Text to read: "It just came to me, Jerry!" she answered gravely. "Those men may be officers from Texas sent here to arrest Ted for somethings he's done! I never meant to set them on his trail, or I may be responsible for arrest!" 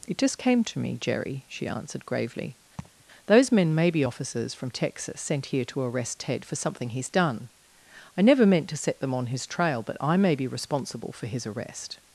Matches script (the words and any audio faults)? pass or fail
fail